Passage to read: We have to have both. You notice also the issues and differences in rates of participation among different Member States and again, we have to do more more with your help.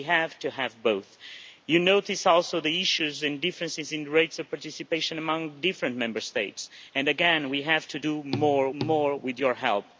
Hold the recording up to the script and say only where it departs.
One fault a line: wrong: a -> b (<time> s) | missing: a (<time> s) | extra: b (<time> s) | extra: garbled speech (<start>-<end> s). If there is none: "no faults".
no faults